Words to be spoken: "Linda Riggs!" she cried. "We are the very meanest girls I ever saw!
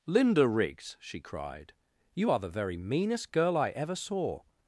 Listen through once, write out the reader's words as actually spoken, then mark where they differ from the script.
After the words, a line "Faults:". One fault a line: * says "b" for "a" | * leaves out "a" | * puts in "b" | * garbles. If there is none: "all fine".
"Linda Riggs!" she cried. "You are the very meanest girl I ever saw!
Faults:
* says "You" for "We"
* says "girl" for "girls"